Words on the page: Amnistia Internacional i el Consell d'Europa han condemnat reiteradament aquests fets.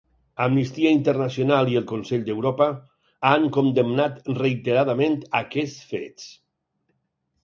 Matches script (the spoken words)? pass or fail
pass